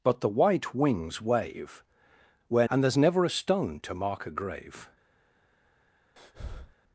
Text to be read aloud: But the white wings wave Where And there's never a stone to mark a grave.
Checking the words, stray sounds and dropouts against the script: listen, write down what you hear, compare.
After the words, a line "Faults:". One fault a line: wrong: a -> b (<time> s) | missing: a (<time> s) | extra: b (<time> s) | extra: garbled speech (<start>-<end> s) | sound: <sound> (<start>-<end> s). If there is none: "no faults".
But the white wings wave Where And there's never a stone to mark a grave.
Faults:
sound: breath (6.2-6.8 s)